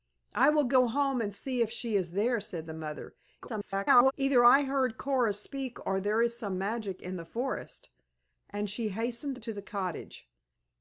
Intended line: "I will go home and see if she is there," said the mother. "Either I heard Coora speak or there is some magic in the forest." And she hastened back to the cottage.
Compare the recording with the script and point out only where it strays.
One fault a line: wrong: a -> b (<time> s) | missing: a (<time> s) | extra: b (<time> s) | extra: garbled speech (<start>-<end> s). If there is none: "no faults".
extra: garbled speech (3.4-4.1 s)
missing: back (9.4 s)